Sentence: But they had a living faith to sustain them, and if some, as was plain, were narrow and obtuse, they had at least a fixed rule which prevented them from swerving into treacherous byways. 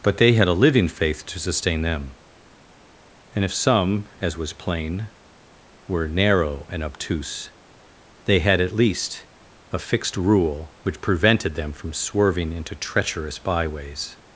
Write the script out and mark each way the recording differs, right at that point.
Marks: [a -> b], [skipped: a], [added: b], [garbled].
But they had a living faith to sustain them, and if some, as was plain, were narrow and obtuse, they had at least a fixed rule which prevented them from swerving into treacherous byways.